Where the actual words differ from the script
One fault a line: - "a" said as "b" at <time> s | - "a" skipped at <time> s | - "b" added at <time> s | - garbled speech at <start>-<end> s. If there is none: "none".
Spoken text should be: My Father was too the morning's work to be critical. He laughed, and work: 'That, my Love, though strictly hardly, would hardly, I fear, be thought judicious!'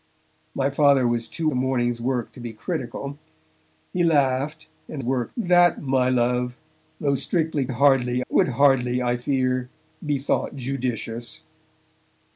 none